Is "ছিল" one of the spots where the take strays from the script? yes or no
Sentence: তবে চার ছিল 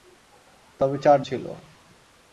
no